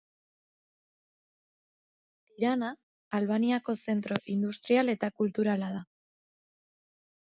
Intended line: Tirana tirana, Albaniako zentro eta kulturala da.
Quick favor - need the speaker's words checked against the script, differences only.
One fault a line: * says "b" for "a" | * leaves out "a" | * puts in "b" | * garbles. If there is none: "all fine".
* leaves out "tirana"
* puts in "industrial"